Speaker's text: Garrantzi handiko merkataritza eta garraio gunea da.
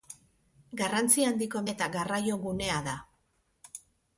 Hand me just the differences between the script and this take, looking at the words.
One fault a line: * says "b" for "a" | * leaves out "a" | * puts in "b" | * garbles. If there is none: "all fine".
* leaves out "merkataritza"